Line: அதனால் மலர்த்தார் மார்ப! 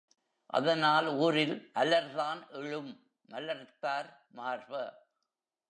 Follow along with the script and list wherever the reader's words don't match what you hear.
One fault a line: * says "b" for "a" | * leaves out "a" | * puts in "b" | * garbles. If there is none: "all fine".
* puts in "ஊரில் அலர்தான் எழும்"